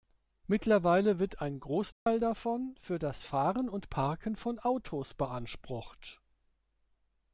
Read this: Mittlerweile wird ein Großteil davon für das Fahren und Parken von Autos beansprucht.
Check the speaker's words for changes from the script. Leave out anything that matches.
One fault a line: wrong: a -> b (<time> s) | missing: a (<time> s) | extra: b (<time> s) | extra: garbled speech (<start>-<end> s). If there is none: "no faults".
no faults